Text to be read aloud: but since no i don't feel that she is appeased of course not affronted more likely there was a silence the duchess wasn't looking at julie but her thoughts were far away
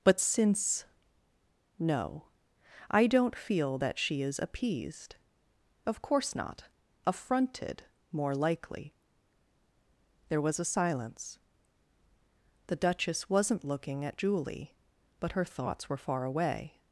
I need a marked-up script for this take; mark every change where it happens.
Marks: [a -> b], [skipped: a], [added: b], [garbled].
but since no i don't feel that she is appeased of course not affronted more likely there was a silence the duchess wasn't looking at julie but her thoughts were far away